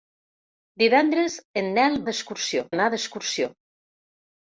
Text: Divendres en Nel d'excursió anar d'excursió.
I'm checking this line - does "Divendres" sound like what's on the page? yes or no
yes